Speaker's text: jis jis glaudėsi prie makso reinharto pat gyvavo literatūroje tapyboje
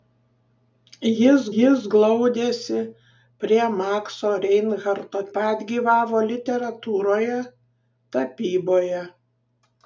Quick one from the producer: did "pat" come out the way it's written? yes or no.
yes